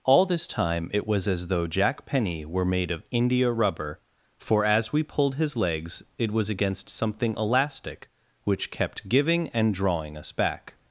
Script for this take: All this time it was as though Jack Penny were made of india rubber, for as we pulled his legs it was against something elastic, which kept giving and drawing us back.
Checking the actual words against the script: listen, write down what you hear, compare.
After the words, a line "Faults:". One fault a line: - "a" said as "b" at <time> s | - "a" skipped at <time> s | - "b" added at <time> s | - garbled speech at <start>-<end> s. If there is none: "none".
All this time it was as though Jack Penny were made of india rubber, for as we pulled his legs it was against something elastic, which kept giving and drawing us back.
Faults:
none